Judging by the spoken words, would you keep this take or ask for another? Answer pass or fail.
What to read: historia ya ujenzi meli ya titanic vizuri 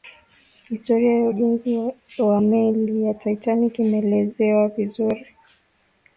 fail